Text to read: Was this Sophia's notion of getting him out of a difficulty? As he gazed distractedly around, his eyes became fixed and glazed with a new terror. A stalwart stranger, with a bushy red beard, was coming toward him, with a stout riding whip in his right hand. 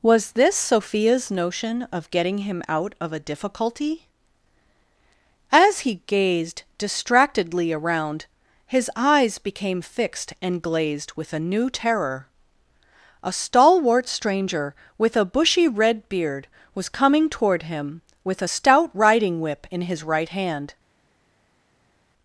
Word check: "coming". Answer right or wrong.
right